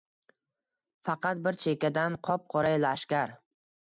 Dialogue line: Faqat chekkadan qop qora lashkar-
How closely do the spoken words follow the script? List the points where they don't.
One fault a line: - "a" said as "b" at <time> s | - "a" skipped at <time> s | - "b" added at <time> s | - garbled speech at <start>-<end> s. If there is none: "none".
- "bir" added at 1.5 s